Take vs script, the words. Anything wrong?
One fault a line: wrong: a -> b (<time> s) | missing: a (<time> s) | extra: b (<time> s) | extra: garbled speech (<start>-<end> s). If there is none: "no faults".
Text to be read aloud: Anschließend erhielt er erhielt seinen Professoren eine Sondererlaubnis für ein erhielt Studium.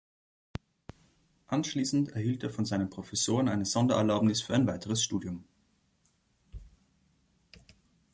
wrong: erhielt -> von (2.5 s)
wrong: erhielt -> weiteres (4.7 s)